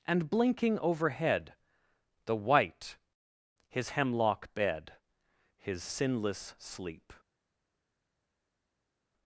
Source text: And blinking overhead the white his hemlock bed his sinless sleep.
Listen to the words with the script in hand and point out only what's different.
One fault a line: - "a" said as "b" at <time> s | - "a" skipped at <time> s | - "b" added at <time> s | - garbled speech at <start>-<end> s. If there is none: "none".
none